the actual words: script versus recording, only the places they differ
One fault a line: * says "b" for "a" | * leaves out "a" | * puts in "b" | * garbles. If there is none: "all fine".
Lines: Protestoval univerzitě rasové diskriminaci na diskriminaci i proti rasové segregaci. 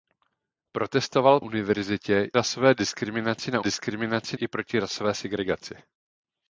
all fine